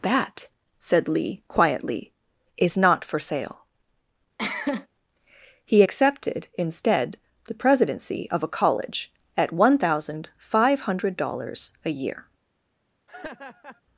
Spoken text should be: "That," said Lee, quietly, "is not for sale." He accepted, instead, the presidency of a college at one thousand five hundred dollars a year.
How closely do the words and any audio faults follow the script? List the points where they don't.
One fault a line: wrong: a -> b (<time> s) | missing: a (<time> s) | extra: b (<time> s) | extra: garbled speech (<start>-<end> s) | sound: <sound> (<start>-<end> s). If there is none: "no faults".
sound: cough (4.4-4.9 s)
sound: laugh (13.1-13.8 s)